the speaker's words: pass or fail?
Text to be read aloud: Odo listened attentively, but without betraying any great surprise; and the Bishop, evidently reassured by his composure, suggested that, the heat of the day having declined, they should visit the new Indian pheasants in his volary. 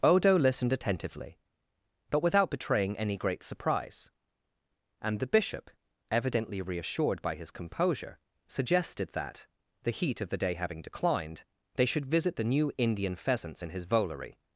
pass